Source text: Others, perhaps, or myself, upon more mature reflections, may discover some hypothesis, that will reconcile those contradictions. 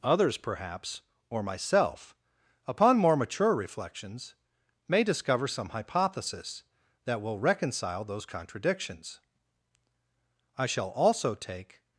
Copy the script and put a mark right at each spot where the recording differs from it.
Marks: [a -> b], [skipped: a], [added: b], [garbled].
Others, perhaps, or myself, upon more mature reflections, may discover some hypothesis, that will reconcile those contradictions. [added: I shall also take]